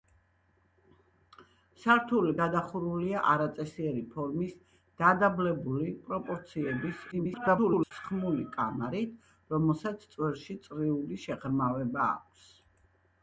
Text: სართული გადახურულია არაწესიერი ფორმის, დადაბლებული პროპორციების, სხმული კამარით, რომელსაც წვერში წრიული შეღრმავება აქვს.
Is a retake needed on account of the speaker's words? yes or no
yes